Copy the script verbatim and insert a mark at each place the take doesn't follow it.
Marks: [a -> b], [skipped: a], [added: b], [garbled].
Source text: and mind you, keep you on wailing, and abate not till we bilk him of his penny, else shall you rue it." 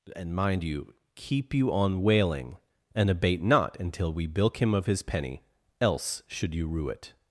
and mind you, keep you on wailing, and abate not [till -> until] we bilk him of his penny, else [shall -> should] you rue it."